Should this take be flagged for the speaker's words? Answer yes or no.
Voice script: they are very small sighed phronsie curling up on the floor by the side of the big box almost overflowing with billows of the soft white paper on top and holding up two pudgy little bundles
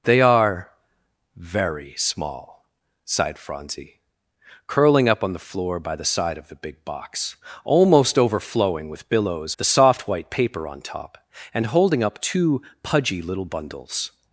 yes